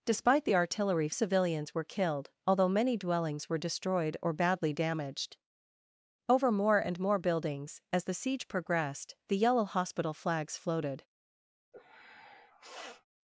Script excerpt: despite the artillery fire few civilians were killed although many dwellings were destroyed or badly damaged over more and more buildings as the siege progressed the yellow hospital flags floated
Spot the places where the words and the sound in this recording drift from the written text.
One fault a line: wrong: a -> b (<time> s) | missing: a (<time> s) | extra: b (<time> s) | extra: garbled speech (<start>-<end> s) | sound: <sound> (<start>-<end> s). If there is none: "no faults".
missing: fire few (1.1 s)
sound: sniff (11.7-13.0 s)